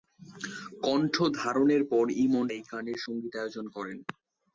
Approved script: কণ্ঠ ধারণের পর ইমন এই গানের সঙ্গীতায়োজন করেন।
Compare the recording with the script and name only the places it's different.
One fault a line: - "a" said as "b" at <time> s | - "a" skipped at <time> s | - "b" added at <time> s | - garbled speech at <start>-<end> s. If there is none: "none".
none